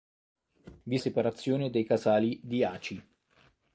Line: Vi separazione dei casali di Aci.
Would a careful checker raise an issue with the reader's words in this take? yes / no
no